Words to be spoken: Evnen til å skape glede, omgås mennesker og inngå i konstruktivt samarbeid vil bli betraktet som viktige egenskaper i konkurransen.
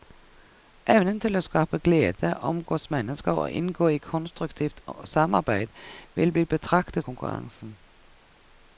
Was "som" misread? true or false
true